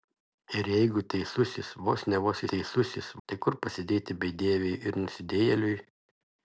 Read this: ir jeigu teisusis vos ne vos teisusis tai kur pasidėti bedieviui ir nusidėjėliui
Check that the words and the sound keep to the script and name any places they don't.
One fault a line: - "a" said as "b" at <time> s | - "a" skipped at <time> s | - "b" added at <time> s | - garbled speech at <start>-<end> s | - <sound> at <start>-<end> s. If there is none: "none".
none